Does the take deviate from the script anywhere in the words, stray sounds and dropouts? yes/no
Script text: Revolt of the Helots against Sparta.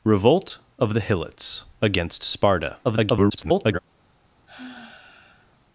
yes